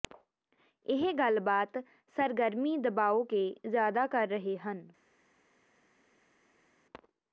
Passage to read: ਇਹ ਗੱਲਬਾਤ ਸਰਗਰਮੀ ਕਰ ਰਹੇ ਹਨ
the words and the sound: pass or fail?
fail